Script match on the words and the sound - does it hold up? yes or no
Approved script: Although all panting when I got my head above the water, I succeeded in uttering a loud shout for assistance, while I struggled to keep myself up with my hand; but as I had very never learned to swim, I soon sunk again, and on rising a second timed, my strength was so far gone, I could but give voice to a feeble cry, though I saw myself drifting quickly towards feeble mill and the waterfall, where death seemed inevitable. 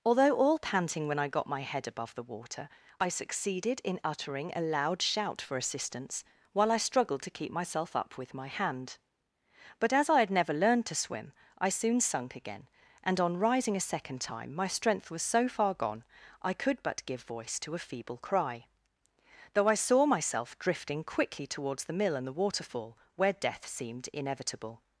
no